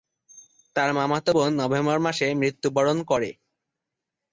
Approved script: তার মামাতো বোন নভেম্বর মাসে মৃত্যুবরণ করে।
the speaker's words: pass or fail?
pass